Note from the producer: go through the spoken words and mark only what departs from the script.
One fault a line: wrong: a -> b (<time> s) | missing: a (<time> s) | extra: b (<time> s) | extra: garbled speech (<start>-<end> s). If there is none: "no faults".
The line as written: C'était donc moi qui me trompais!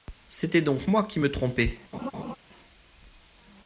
no faults